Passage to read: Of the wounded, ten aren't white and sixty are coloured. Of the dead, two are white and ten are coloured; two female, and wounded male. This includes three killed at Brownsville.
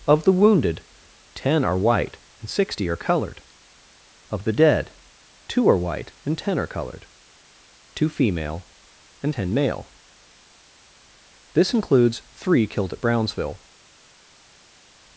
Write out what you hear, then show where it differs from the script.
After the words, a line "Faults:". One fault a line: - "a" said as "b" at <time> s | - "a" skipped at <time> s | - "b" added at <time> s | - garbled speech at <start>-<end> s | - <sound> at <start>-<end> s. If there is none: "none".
Of the wounded, ten are white and sixty are coloured. Of the dead, two are white and ten are coloured; two female, and ten male. This includes three killed at Brownsville.
Faults:
- "aren't" said as "are" at 1.6 s
- "wounded" said as "ten" at 9.3 s